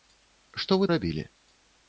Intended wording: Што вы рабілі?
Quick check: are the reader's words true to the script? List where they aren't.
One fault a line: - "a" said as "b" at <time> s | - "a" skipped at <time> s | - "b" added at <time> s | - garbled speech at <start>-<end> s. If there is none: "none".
none